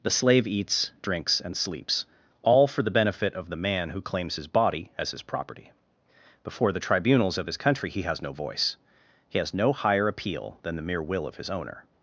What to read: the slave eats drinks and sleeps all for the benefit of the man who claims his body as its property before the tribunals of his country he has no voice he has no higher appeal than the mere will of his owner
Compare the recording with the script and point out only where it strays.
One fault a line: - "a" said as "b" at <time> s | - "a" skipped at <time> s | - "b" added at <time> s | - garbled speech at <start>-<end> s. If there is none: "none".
- "its" said as "his" at 5.1 s